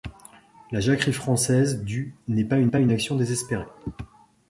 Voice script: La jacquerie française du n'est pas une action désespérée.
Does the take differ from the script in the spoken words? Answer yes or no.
yes